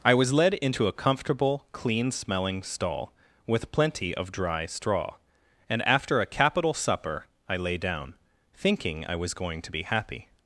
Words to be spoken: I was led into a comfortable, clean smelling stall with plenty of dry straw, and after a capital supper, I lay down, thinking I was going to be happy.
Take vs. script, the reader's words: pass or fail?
pass